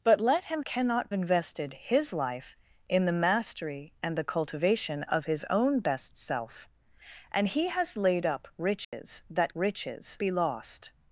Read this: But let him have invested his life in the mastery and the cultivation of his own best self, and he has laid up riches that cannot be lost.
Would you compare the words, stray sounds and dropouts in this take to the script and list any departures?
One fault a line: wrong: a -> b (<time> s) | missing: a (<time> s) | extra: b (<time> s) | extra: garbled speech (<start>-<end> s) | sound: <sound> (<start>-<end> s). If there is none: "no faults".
wrong: have -> cannot (0.6 s)
sound: dropout (8.8-8.9 s)
wrong: cannot -> riches (9.5 s)